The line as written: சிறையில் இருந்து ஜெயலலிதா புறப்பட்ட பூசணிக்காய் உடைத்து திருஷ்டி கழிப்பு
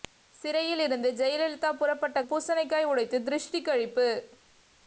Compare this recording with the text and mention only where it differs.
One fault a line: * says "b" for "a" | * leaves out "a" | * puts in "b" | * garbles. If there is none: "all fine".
all fine